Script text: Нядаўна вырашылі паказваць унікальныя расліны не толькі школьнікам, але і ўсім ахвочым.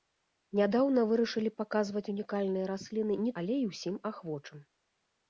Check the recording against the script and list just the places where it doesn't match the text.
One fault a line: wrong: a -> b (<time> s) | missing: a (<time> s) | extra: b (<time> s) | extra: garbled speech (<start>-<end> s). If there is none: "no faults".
missing: толькі школьнікам (3.3 s)